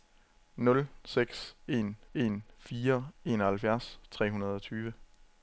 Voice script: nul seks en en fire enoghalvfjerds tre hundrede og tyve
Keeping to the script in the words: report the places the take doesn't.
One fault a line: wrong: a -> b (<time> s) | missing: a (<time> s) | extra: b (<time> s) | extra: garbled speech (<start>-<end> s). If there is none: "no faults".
no faults